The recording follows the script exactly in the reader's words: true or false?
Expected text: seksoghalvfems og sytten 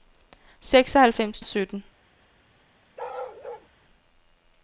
true